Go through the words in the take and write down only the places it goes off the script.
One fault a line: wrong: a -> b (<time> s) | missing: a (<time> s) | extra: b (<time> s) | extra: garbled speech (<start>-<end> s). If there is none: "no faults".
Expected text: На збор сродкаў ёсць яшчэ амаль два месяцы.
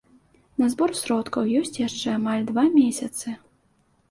no faults